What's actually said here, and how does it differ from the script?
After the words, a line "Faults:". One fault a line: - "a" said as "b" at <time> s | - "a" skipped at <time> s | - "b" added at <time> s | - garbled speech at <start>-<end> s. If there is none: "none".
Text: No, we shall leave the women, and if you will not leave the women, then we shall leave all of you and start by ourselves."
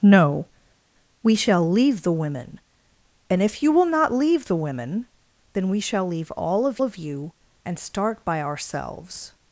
No, we shall leave the women, and if you will not leave the women, then we shall leave all of of you and start by ourselves."
Faults:
- "of" added at 6.8 s